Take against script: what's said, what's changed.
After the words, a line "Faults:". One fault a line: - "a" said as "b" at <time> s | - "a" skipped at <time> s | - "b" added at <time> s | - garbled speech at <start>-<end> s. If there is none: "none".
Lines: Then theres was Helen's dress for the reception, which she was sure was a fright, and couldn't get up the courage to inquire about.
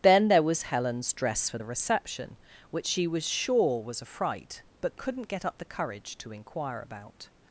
Then there was Helen's dress for the reception, which she was sure was a fright, but couldn't get up the courage to inquire about.
Faults:
- "theres" said as "there" at 0.3 s
- "and" said as "but" at 4.8 s